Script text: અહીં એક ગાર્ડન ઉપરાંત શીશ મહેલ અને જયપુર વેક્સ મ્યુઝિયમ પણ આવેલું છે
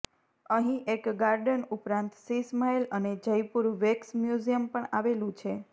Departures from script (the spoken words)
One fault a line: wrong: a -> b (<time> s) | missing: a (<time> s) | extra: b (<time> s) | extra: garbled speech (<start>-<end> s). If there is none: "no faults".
no faults